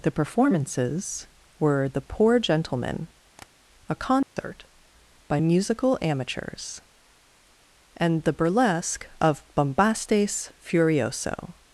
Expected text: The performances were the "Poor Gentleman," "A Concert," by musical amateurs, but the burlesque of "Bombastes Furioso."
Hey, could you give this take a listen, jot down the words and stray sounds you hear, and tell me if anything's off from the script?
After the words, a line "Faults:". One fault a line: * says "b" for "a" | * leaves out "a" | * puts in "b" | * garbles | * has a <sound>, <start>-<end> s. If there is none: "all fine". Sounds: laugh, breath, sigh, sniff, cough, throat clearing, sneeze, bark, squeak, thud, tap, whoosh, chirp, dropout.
The performances were the "Poor Gentleman," "A Concert," by musical amateurs, and the burlesque of "Bombastes Furioso."
Faults:
* has a tap, 3.4-3.5 s
* has a dropout, 4.2-4.4 s
* says "and" for "but"